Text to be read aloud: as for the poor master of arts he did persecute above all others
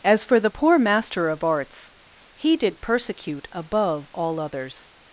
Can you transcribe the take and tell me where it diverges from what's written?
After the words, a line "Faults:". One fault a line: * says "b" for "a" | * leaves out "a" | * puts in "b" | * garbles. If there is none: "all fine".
as for the poor master of arts he did persecute above all others
Faults:
all fine